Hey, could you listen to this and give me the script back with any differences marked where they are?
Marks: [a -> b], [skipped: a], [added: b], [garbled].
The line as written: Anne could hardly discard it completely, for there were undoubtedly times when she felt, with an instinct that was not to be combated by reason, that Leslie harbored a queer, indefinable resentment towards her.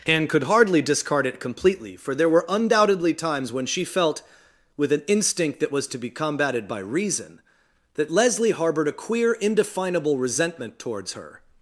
Anne could hardly discard it completely, for there were undoubtedly times when she felt, with an instinct that was [skipped: not] to be combated by reason, that Leslie harbored a queer, indefinable resentment towards her.